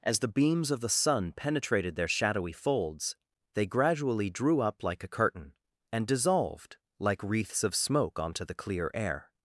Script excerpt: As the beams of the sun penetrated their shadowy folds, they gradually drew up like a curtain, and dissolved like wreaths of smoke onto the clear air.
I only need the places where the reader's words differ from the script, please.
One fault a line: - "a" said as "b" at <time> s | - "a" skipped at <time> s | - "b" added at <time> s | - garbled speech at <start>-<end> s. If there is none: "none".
none